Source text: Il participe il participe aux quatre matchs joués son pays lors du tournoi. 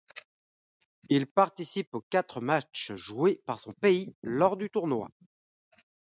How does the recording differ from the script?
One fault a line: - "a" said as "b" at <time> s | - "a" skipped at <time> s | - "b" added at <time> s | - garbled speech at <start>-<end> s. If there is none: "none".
- "il participe" skipped at 1.9 s
- "par" added at 3.4 s